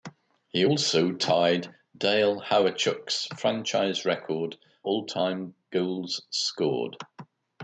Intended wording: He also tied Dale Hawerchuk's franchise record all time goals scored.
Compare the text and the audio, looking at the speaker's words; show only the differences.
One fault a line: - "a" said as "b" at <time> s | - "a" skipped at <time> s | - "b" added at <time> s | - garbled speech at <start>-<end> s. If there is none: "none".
none